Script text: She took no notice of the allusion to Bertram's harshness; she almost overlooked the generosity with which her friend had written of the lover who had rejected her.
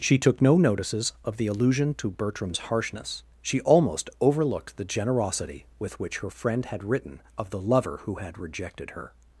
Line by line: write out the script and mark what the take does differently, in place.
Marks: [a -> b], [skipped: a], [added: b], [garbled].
She took no [notice -> notices] of the allusion to Bertram's harshness; she almost overlooked the generosity with which her friend had written of the lover who had rejected her.